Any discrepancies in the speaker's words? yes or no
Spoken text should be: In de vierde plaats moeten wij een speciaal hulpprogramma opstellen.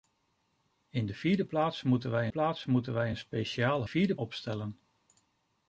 yes